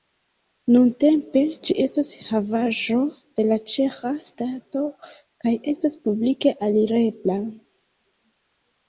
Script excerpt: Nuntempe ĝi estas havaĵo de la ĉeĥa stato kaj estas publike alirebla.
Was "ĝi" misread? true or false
false